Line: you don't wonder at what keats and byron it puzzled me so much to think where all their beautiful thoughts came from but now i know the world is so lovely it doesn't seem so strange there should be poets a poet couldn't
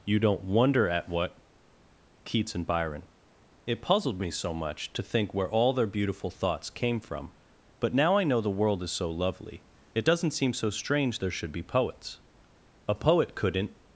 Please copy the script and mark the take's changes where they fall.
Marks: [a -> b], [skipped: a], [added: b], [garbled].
you don't wonder at what keats and byron it puzzled me so much to think where all their beautiful thoughts came from but now i know the world is so lovely it doesn't seem so strange there should be poets a poet couldn't